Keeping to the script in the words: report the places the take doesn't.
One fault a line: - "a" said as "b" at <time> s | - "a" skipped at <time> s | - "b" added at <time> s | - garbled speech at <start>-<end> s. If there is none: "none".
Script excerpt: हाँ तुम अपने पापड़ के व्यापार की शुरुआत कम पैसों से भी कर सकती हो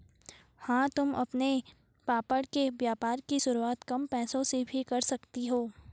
none